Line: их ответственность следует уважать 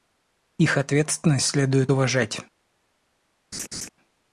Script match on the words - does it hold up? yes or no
yes